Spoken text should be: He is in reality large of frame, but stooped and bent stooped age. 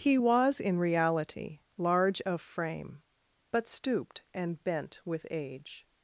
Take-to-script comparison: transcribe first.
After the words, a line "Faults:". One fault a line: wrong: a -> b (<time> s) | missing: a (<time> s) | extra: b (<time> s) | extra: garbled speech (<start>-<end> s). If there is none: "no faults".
He was in reality large of frame, but stooped and bent with age.
Faults:
wrong: is -> was (0.2 s)
wrong: stooped -> with (5.0 s)